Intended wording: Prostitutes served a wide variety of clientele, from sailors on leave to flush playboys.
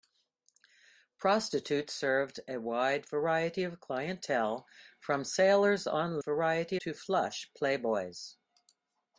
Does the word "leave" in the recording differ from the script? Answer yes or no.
yes